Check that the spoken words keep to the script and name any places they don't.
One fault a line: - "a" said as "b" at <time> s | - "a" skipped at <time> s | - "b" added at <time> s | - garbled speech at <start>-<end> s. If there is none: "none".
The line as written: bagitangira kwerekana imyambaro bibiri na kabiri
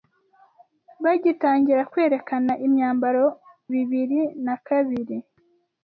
none